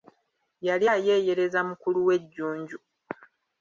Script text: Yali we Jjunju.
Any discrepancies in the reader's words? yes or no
yes